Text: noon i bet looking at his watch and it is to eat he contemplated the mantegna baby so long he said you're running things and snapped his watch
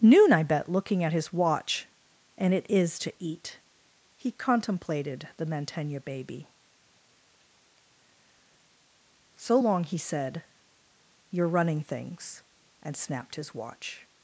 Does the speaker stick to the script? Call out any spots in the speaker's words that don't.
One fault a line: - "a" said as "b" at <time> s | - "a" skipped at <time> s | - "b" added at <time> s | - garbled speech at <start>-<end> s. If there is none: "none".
none